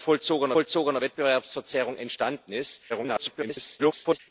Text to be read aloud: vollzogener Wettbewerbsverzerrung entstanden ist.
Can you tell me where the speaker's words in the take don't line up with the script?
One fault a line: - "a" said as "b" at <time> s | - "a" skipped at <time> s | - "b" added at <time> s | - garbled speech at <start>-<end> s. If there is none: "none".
- "vollzogener" added at 0.5 s
- garbled speech at 2.9-4.2 s